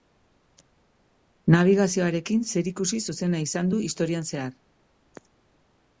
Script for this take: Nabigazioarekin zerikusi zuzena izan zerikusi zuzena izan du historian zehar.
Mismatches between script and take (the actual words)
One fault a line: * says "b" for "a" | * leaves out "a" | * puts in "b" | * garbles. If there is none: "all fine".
* leaves out "zerikusi zuzena izan"